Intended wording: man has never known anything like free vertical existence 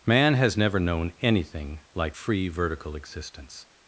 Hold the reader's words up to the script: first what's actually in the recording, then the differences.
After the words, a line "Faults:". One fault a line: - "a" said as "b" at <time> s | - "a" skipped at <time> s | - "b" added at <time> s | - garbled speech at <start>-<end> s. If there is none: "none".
man has never known anything like free vertical existence
Faults:
none